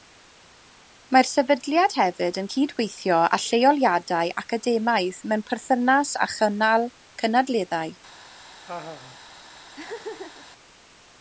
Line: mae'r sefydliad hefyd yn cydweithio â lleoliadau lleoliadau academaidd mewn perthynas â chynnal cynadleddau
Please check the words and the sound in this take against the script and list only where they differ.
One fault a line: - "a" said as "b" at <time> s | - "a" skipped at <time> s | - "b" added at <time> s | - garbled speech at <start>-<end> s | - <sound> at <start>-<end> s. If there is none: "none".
- "lleoliadau" skipped at 4.3 s
- laugh at 8.7-9.2 s
- laugh at 9.7-10.5 s